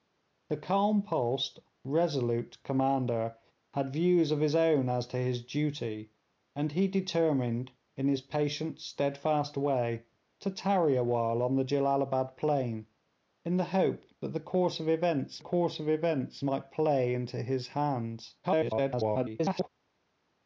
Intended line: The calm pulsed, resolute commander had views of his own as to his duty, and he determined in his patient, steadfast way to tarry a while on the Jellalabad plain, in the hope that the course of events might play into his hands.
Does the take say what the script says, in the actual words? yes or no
no